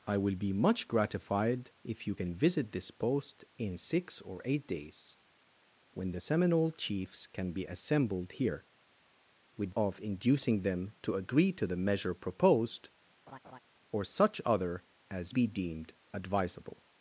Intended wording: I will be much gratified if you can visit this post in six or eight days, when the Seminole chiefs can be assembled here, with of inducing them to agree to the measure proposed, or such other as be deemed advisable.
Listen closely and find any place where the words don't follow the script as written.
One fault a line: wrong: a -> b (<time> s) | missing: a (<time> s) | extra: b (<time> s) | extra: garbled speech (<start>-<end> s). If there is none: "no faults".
no faults